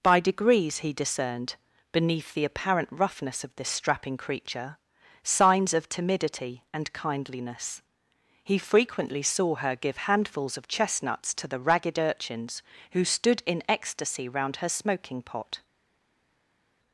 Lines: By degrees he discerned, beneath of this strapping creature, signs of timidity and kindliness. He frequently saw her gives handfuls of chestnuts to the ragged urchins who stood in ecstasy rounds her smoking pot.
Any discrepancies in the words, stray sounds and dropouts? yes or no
yes